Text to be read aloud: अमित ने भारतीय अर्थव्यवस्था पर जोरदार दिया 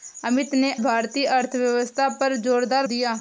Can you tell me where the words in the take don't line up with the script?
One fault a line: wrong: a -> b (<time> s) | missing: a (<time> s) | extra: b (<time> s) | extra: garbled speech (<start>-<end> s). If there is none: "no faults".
no faults